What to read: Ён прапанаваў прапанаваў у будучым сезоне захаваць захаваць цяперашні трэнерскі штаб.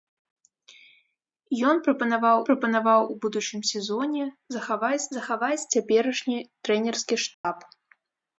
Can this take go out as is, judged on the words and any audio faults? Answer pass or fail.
fail